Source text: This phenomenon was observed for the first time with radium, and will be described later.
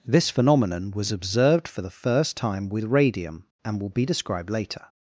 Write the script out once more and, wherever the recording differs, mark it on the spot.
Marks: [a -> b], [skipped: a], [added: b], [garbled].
This phenomenon was observed for the first time with radium, and will be described later.